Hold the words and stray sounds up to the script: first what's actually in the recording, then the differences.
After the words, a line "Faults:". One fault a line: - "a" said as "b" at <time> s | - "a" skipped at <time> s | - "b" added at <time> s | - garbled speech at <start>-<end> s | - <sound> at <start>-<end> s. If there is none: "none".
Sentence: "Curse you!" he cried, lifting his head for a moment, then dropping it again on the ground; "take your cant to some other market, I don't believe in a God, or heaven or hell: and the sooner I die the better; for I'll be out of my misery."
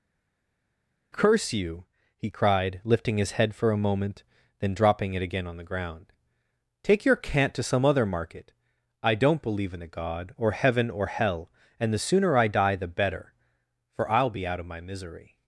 "Curse you!" he cried, lifting his head for a moment, then dropping it again on the ground; "take your cant to some other market, I don't believe in a God, or heaven or hell: and the sooner I die the better; for I'll be out of my misery."
Faults:
none